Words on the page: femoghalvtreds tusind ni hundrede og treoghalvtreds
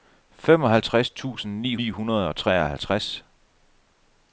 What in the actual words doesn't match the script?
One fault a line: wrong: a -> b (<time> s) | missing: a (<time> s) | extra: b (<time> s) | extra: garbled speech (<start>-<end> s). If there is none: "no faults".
extra: ni (1.8 s)